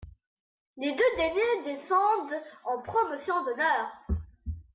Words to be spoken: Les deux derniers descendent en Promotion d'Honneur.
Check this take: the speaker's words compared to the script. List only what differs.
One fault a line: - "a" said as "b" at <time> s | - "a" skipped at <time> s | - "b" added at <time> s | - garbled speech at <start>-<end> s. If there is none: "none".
none